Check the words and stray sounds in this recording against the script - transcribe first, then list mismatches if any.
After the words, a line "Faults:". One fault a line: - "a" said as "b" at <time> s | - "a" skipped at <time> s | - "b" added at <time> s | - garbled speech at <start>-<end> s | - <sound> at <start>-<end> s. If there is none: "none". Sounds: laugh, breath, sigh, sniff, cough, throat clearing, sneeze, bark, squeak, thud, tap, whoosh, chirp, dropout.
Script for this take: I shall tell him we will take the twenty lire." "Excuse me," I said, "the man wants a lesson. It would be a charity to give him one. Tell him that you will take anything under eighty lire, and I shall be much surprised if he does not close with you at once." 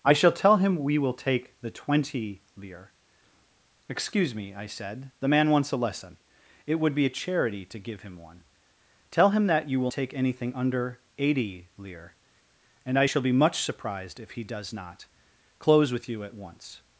I shall tell him we will take the twenty lire." "Excuse me," I said, "the man wants a lesson. It would be a charity to give him one. Tell him that you will take anything under eighty lire, and I shall be much surprised if he does not close with you at once."
Faults:
none